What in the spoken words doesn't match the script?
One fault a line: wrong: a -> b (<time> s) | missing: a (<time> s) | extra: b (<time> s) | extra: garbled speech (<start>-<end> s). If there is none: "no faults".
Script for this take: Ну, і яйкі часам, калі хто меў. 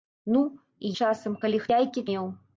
missing: яйкі (0.9 s)
wrong: хто -> яйкі (1.8 s)